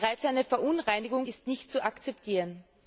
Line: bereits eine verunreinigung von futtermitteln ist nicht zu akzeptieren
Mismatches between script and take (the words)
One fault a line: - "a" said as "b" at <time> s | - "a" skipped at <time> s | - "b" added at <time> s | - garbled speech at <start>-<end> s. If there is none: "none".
- "von futtermitteln" skipped at 1.3 s